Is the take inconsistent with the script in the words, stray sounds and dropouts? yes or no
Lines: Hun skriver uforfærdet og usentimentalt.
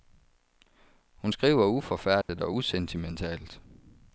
yes